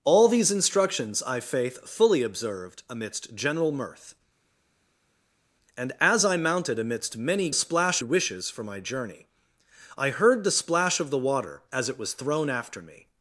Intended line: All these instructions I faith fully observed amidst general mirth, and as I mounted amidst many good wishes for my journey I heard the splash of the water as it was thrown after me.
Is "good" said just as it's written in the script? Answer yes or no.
no